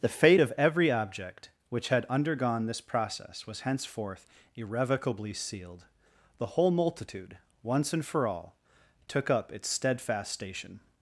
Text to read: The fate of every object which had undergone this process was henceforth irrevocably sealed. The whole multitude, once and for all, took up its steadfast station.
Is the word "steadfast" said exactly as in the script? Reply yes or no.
yes